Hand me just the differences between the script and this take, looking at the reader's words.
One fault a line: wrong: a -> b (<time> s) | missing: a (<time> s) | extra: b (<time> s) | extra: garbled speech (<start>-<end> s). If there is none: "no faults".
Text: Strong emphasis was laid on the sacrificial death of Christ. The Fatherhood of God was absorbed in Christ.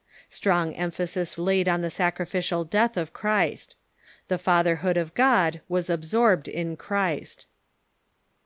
missing: was (1.4 s)